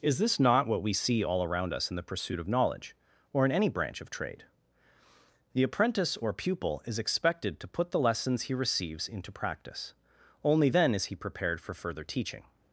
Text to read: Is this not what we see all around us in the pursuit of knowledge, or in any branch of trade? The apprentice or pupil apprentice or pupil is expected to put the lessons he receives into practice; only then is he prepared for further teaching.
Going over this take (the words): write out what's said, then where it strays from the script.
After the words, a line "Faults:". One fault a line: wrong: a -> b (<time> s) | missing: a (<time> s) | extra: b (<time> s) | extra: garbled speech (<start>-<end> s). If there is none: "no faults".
Is this not what we see all around us in the pursuit of knowledge, or in any branch of trade? The apprentice or pupil is expected to put the lessons he receives into practice; only then is he prepared for further teaching.
Faults:
missing: apprentice or pupil (6.8 s)